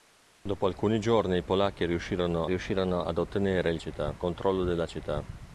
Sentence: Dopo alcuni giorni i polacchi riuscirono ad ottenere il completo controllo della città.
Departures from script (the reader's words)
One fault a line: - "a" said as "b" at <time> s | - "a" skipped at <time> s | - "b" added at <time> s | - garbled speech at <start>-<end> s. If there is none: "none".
- "riuscirono" added at 2.5 s
- "completo" said as "città" at 3.8 s